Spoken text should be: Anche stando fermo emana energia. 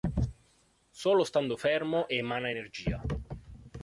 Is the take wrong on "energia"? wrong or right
right